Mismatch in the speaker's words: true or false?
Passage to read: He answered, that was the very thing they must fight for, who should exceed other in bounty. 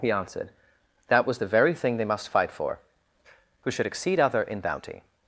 false